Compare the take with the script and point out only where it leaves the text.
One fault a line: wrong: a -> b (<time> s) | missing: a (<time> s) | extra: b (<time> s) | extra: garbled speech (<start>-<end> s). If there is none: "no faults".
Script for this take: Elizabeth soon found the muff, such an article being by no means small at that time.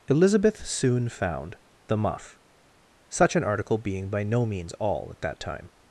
wrong: small -> all (4.7 s)